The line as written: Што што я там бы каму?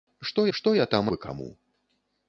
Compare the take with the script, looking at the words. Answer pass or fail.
pass